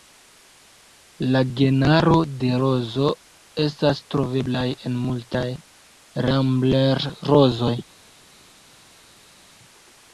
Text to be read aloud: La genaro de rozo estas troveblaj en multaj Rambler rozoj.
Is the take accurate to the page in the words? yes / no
yes